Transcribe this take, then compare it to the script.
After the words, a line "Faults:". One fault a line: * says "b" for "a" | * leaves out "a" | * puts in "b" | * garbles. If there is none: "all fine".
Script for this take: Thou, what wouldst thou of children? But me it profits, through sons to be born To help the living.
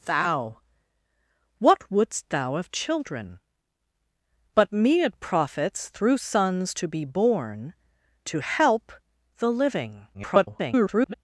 Thou, what wouldst thou of children? But me it profits, through sons to be born To help the living. [garbled]
Faults:
* garbles